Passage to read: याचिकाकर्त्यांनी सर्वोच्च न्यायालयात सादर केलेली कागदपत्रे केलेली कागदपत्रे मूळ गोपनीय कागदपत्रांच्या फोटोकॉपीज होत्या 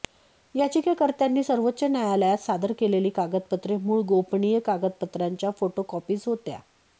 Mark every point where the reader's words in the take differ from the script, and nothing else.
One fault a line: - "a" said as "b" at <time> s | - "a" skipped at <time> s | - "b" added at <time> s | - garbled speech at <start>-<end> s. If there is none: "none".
- "केलेली कागदपत्रे" skipped at 3.8 s